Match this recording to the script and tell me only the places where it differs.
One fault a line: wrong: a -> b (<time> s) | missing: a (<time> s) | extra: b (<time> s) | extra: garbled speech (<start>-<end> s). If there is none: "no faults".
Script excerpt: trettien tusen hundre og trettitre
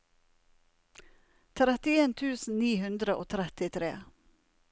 extra: ni (2.6 s)